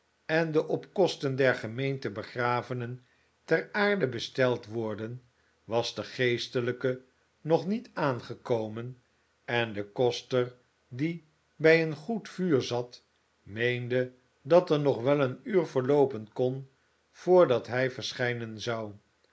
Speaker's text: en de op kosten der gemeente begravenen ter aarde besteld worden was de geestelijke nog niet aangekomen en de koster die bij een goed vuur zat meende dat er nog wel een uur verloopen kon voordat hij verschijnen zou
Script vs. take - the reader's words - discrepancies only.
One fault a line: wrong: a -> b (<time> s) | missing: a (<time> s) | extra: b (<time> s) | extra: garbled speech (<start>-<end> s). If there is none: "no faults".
no faults